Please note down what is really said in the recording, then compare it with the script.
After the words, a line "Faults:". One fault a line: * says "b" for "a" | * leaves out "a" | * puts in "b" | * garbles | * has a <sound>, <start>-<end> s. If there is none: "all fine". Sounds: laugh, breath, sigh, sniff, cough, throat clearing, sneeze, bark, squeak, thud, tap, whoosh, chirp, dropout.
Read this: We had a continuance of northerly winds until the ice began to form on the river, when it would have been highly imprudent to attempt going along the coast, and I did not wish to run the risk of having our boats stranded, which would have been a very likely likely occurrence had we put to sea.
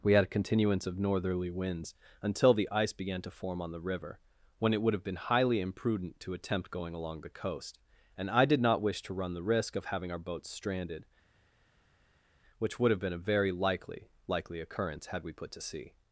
We had a continuance of northerly winds until the ice began to form on the river, when it would have been highly imprudent to attempt going along the coast, and I did not wish to run the risk of having our boats stranded, which would have been a very likely likely occurrence had we put to sea.
Faults:
all fine